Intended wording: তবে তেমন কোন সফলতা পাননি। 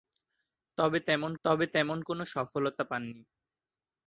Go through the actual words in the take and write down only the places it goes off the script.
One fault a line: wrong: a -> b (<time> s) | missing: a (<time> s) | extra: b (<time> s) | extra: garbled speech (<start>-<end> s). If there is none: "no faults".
extra: তবে তেমন (1.4 s)